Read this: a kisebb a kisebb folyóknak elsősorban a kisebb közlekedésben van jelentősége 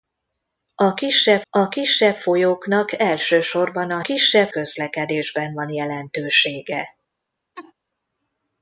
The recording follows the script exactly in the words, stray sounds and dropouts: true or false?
false